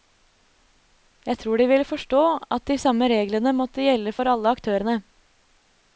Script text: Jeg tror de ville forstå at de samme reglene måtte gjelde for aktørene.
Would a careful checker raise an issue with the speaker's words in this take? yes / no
yes